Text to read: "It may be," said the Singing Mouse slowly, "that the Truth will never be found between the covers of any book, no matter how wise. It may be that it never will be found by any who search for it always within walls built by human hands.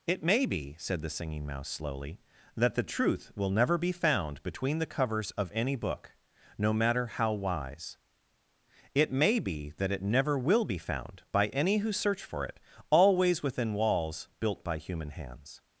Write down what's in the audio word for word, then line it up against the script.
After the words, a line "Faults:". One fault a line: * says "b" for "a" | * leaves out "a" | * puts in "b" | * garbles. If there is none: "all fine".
"It may be," said the Singing Mouse slowly, "that the Truth will never be found between the covers of any book, no matter how wise. It may be that it never will be found by any who search for it always within walls built by human hands.
Faults:
all fine